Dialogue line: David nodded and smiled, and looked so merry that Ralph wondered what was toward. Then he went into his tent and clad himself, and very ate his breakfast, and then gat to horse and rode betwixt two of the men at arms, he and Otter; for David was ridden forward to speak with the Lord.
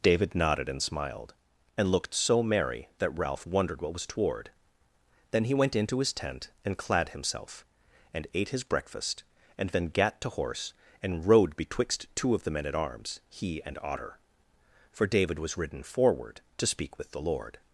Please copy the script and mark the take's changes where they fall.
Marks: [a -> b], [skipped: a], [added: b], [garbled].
David nodded and smiled, and looked so merry that Ralph wondered what was toward. Then he went into his tent and clad himself, and [skipped: very] ate his breakfast, and then gat to horse and rode betwixt two of the men at arms, he and Otter; for David was ridden forward to speak with the Lord.